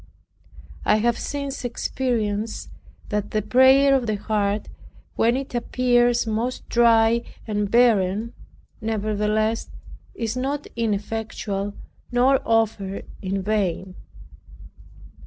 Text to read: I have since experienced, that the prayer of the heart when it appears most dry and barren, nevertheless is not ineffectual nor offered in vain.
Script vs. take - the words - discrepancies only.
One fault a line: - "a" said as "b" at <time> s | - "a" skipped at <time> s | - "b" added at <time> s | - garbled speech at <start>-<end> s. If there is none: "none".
none